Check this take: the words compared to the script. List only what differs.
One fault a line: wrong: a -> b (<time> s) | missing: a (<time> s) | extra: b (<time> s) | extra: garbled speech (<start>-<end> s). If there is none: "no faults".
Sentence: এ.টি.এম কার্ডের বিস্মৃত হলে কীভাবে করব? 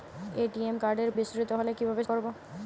no faults